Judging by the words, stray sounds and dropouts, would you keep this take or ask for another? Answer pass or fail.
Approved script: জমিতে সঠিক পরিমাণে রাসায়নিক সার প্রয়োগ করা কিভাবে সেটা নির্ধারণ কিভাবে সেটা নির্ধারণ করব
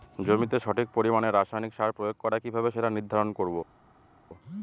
fail